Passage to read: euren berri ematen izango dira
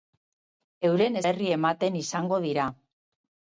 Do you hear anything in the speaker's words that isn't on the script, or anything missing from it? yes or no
no